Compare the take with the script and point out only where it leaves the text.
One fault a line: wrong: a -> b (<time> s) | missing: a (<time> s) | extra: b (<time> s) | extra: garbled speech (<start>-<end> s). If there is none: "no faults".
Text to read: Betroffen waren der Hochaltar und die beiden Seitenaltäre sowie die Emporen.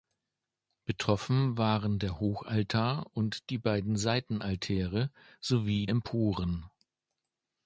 missing: die (5.8 s)